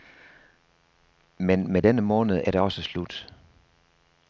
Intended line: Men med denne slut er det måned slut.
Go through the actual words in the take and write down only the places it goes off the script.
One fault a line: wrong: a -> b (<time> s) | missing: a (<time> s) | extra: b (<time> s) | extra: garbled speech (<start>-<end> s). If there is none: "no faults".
wrong: slut -> måned (2.0 s)
wrong: måned -> også (2.6 s)